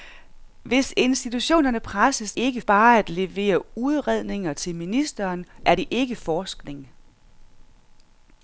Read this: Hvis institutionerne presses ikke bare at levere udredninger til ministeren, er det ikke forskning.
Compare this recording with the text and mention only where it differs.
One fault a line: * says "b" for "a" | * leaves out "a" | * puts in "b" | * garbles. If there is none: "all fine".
all fine